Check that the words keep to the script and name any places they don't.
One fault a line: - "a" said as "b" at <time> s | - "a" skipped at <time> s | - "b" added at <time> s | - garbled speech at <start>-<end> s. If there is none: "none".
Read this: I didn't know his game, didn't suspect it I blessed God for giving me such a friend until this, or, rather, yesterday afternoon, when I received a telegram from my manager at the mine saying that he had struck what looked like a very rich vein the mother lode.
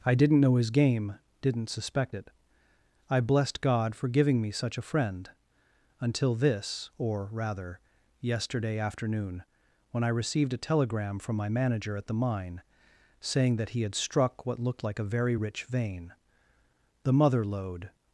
none